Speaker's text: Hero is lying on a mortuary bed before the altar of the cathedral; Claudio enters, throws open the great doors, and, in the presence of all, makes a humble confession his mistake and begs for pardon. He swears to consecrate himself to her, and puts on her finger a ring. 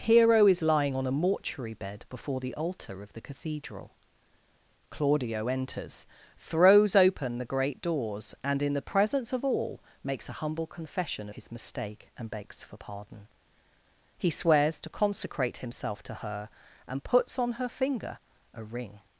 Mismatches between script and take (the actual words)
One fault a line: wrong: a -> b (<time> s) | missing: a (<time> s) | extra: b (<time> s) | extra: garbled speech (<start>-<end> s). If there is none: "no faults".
no faults